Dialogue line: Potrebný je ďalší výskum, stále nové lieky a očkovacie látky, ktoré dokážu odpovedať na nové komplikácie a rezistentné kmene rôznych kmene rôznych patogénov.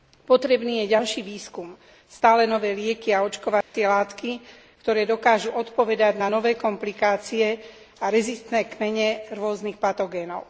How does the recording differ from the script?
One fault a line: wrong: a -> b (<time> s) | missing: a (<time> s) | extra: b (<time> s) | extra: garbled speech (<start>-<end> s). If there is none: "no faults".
missing: kmene rôznych (9.8 s)